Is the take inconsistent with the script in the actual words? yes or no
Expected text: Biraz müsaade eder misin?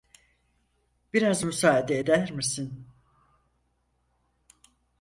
no